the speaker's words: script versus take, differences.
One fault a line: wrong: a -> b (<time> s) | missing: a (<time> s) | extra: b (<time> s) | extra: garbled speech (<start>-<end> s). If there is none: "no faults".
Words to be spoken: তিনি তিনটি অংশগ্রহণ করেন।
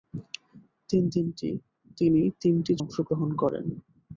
no faults